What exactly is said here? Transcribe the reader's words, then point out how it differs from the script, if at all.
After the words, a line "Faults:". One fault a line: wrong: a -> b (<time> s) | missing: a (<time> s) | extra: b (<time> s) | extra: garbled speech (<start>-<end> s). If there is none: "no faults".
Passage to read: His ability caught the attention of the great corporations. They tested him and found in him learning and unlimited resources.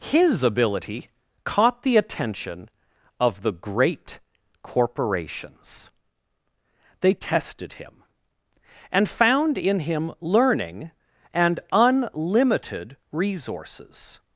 His ability caught the attention of the great corporations. They tested him and found in him learning and unlimited resources.
Faults:
no faults